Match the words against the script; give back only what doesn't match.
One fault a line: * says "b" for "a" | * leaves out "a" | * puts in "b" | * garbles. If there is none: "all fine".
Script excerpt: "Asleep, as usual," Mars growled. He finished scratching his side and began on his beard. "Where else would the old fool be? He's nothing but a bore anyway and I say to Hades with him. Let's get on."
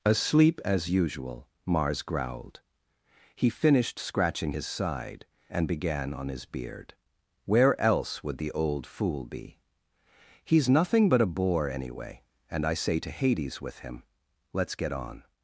all fine